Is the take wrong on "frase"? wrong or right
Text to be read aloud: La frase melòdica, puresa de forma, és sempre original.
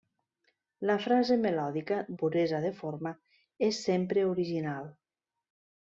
right